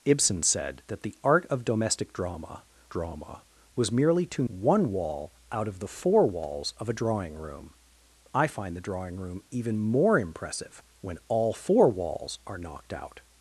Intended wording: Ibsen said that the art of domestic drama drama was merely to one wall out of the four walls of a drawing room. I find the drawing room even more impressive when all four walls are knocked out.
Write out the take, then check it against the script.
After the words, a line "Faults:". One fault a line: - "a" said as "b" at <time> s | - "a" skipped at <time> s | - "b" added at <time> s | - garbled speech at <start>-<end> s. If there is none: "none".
Ibsen said that the art of domestic drama drama was merely to one wall out of the four walls of a drawing room. I find the drawing room even more impressive when all four walls are knocked out.
Faults:
none